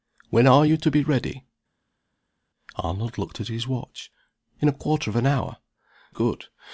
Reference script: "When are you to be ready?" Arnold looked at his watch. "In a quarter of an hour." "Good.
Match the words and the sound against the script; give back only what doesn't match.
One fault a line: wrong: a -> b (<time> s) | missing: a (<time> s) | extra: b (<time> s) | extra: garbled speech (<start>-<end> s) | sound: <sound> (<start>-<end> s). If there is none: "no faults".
no faults